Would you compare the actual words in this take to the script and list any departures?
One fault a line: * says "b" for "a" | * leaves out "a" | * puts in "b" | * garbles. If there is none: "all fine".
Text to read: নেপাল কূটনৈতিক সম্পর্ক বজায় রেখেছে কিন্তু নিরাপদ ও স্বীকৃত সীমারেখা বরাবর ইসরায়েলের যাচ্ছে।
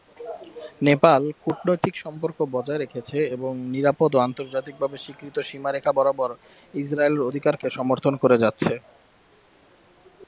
* says "এবং" for "কিন্তু"
* puts in "আন্তর্জাতিকভাবে"
* puts in "অধিকারকে সমর্থন করে"